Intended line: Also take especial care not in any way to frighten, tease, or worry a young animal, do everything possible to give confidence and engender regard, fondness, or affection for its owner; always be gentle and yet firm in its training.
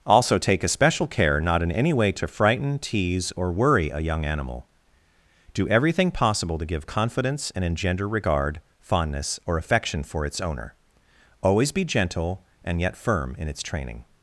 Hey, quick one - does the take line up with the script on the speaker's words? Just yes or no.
yes